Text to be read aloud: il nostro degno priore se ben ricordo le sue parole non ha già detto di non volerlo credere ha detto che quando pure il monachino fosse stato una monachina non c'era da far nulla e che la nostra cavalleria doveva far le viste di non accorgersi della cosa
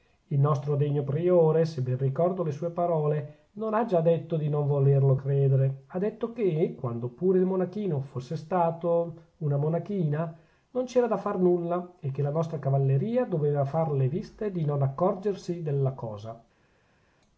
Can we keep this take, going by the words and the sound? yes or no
yes